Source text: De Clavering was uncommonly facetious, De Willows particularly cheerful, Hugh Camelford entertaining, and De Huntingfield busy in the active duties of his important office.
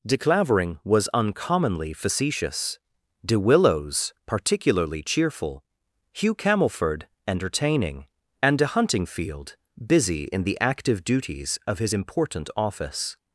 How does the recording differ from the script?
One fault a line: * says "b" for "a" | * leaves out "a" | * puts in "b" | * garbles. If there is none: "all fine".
all fine